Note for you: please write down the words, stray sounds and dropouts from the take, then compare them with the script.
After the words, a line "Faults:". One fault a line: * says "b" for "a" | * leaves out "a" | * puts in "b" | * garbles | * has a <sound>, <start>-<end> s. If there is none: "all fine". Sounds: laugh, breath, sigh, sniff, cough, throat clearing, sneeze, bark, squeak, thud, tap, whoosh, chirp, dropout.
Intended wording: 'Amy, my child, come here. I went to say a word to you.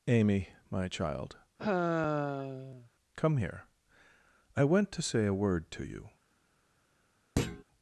'Amy, my child, come here. I went to say a word to you.
Faults:
* has a sigh, 1.6-2.9 s
* has a thud, 7.4-7.6 s